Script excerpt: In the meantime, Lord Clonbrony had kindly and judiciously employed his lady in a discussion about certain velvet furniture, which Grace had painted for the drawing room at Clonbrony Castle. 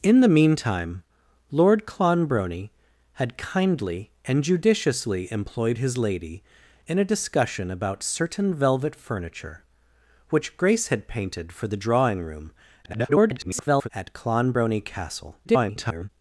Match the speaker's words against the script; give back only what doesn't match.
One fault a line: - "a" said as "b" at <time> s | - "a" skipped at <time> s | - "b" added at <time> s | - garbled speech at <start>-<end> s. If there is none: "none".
- garbled speech at 12.8-13.9 s
- garbled speech at 15.4-16.1 s